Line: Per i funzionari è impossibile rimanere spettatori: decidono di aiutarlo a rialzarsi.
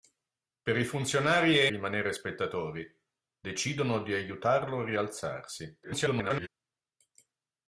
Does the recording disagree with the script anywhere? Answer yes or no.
yes